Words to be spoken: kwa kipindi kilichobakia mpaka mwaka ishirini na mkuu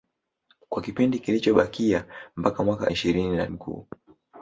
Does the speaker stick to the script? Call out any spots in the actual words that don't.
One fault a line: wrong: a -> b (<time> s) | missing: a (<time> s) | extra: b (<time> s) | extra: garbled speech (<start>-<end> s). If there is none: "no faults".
no faults